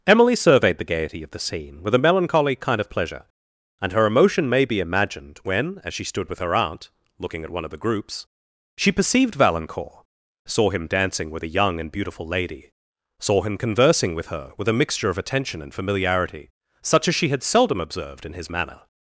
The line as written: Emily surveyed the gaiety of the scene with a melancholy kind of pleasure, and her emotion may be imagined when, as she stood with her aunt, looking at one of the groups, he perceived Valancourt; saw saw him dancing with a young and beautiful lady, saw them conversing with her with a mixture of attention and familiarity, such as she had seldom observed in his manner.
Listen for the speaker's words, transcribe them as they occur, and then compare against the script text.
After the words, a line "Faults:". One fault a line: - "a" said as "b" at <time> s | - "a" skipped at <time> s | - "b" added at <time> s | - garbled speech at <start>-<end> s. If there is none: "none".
Emily surveyed the gaiety of the scene with a melancholy kind of pleasure, and her emotion may be imagined when, as she stood with her aunt, looking at one of the groups, she perceived Valancourt; saw him dancing with a young and beautiful lady, saw him conversing with her with a mixture of attention and familiarity, such as she had seldom observed in his manner.
Faults:
- "he" said as "she" at 8.8 s
- "saw" skipped at 10.7 s
- "them" said as "him" at 13.4 s